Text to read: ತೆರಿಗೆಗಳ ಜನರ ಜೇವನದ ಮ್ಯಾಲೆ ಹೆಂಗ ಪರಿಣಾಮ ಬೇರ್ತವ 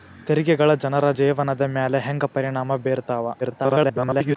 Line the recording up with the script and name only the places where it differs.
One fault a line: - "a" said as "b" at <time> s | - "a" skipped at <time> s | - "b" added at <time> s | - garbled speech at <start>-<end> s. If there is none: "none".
- garbled speech at 3.4-4.4 s